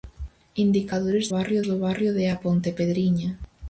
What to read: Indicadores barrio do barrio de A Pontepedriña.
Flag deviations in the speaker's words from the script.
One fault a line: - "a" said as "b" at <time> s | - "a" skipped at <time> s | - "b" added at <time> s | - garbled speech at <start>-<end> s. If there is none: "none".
none